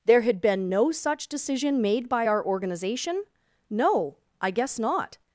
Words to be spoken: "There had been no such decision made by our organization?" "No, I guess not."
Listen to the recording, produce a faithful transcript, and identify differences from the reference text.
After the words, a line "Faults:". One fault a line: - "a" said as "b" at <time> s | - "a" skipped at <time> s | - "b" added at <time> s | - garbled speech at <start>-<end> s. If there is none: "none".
"There had been no such decision made by our organization?" "No, I guess not."
Faults:
none